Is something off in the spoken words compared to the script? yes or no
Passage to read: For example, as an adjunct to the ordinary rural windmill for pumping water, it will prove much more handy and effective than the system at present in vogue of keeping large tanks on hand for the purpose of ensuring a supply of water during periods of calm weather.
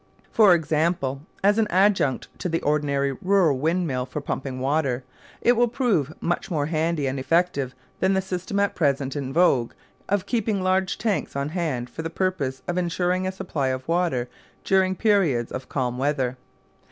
no